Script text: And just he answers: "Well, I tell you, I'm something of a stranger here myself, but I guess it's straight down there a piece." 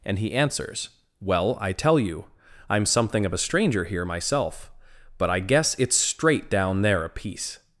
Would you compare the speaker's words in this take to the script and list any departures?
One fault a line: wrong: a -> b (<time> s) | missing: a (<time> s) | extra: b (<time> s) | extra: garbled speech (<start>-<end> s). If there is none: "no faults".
missing: just (0.2 s)